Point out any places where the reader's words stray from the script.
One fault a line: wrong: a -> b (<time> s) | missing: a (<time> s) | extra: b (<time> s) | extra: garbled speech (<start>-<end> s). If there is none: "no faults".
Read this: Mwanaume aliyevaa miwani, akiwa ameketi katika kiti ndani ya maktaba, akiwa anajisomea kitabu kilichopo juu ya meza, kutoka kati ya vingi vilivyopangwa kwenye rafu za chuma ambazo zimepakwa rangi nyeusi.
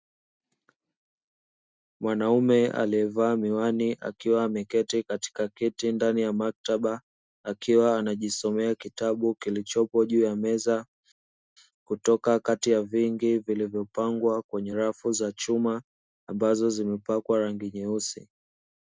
no faults